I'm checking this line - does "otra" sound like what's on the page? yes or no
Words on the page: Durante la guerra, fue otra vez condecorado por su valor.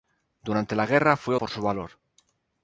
no